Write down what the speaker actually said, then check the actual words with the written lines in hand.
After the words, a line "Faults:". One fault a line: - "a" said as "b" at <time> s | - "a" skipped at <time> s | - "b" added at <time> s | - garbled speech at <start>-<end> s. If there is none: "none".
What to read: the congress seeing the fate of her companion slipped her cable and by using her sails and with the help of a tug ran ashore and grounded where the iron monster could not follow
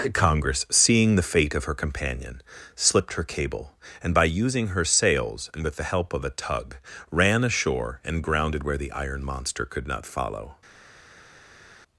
congress seeing the fate of her companion slipped her cable and by using her sails and with the help of a tug ran ashore and grounded where the iron monster could not follow
Faults:
- "the" skipped at 0.1 s